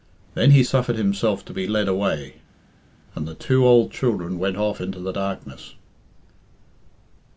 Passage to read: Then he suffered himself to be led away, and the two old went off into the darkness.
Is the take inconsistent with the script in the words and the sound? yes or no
yes